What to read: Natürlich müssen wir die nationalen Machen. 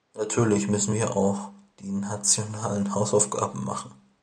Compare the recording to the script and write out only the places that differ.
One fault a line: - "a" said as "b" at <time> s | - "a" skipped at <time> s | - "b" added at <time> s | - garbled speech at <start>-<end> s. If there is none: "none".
- "auch" added at 1.2 s
- "Hausaufgaben" added at 2.9 s